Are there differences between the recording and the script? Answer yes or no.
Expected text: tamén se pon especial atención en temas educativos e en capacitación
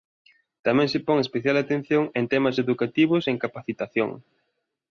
no